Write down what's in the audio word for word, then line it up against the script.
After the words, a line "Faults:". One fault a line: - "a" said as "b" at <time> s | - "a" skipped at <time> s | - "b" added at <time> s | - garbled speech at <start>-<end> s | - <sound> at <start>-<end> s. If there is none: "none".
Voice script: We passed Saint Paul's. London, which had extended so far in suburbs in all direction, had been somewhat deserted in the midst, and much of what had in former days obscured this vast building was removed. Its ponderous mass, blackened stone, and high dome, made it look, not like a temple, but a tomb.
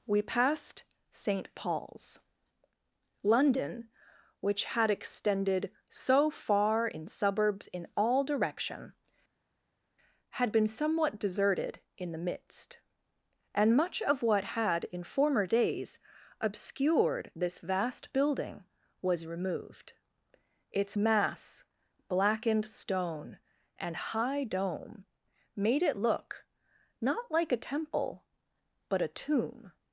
We passed Saint Paul's. London, which had extended so far in suburbs in all direction, had been somewhat deserted in the midst, and much of what had in former days obscured this vast building was removed. Its mass, blackened stone, and high dome, made it look, not like a temple, but a tomb.
Faults:
- "ponderous" skipped at 21.0 s